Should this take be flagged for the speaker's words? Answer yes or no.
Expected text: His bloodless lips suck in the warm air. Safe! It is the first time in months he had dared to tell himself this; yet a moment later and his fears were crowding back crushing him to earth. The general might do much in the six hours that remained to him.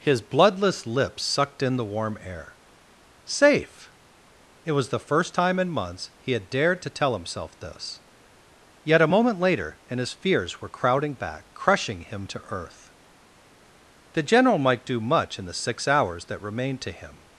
yes